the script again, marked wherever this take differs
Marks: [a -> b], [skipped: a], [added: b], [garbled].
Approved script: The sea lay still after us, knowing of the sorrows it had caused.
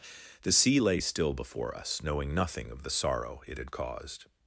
The sea lay still [after -> before] us, knowing [added: nothing] of the [sorrows -> sorrow] it had caused.